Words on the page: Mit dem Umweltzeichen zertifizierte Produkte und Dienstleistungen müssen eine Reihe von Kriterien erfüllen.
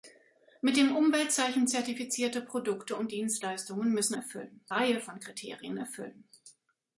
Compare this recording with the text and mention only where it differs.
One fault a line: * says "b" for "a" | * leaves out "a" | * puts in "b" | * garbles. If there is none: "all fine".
* says "erfüllen" for "eine"